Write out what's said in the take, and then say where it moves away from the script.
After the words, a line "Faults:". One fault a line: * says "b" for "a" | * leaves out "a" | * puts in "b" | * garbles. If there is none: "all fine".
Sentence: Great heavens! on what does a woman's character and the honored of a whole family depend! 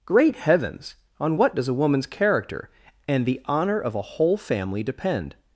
Great heavens! on what does a woman's character and the honor of a whole family depend!
Faults:
* says "honor" for "honored"